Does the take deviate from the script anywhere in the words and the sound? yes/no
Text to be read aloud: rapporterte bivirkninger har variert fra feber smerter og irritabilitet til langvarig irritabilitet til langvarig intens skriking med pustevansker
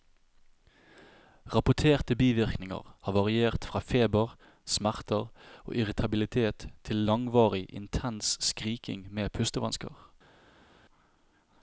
yes